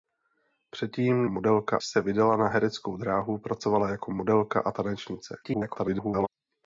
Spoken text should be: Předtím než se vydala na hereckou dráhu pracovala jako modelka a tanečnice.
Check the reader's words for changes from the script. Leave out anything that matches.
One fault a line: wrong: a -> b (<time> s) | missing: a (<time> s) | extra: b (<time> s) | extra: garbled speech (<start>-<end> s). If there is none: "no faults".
wrong: než -> modelka (1.3 s)
extra: garbled speech (5.4-6.3 s)